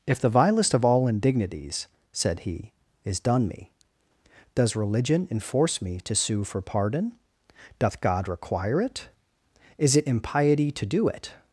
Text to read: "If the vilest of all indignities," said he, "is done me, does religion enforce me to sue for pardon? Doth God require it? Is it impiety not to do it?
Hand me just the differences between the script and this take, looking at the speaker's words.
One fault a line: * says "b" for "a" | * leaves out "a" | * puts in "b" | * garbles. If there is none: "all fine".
* leaves out "not"